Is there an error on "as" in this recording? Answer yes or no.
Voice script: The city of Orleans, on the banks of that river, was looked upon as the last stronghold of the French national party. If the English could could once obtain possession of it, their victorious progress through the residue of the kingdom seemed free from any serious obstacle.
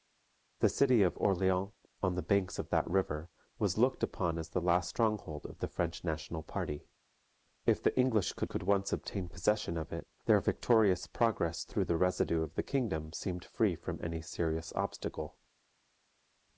no